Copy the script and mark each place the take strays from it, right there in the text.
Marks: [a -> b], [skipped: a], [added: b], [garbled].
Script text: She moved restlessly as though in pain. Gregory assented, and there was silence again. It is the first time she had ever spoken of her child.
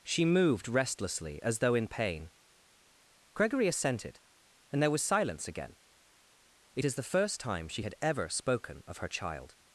She moved restlessly as though in pain. Gregory assented, and there was silence again. It is the first time she had ever spoken of her child.